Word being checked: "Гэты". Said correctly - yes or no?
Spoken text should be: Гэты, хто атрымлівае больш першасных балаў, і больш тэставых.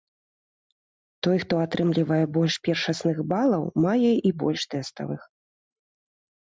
no